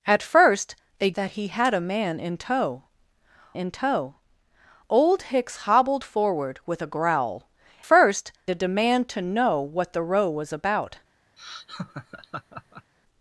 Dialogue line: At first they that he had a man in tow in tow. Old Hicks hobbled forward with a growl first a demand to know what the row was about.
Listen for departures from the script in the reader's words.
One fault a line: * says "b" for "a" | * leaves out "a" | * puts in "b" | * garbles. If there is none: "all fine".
all fine